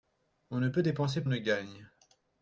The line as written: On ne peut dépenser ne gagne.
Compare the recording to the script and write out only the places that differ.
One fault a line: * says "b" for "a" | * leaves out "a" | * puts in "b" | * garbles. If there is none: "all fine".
all fine